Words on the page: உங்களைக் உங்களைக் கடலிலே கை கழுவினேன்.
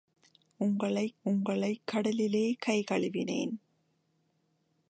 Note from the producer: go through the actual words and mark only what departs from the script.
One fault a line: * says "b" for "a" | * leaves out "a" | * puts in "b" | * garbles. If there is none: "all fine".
all fine